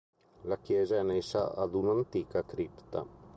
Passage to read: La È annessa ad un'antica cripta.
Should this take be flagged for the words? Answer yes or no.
yes